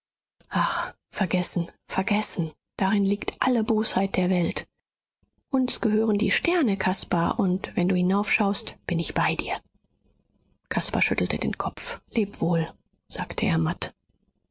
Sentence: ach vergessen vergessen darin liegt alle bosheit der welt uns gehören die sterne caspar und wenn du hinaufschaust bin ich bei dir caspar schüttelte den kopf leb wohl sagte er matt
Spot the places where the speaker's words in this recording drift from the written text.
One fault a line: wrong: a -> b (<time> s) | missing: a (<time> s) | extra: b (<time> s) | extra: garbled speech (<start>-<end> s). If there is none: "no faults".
no faults